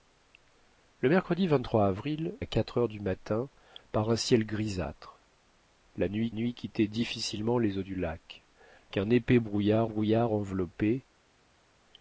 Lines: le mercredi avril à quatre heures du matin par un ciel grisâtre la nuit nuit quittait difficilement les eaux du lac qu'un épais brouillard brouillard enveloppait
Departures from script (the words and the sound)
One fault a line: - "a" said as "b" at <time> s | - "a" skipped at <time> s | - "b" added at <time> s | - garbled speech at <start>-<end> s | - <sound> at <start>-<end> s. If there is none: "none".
none